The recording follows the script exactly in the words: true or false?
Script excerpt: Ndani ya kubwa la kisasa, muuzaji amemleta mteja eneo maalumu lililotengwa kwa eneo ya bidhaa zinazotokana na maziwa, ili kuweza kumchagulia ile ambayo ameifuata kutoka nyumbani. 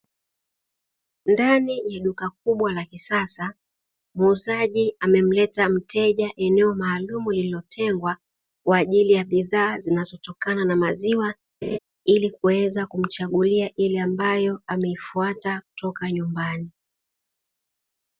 false